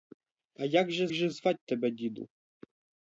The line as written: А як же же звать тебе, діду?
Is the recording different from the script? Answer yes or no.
no